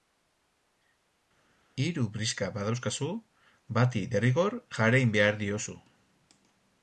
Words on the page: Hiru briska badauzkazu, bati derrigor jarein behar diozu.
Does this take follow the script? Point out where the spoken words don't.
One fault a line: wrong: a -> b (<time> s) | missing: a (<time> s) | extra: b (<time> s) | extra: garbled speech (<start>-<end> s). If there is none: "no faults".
no faults